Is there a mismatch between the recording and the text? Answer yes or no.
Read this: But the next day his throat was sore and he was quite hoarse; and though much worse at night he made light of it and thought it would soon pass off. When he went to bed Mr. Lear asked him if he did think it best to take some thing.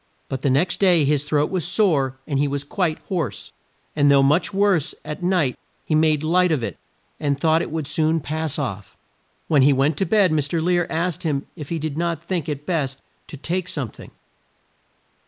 yes